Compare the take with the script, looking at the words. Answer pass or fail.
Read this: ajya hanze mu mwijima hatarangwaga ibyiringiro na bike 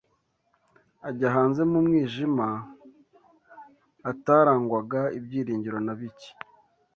pass